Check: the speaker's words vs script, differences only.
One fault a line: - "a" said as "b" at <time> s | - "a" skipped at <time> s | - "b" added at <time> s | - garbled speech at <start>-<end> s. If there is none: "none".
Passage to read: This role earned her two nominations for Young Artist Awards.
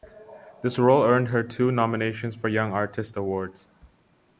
none